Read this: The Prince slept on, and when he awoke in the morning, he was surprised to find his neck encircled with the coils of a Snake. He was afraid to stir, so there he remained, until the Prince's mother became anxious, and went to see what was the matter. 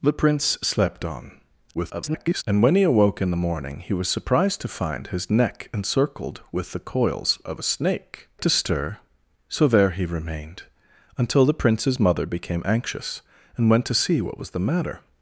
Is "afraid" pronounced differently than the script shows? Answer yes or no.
yes